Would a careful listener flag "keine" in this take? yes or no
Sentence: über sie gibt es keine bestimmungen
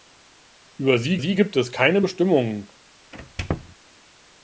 no